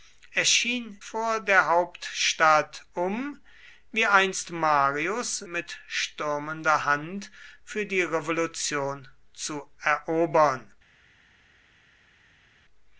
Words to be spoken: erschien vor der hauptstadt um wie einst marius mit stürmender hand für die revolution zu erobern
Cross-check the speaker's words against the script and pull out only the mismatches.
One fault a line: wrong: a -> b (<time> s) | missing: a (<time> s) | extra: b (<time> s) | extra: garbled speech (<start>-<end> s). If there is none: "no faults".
no faults